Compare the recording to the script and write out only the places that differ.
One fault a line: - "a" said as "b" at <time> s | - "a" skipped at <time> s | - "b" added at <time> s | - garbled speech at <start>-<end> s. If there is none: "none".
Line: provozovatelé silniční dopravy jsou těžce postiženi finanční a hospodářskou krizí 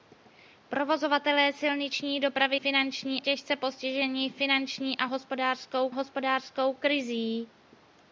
- "jsou" said as "finanční" at 2.5 s
- "hospodářskou" added at 5.9 s